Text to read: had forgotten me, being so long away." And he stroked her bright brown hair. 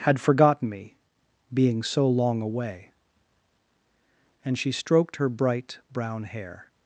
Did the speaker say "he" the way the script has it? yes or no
no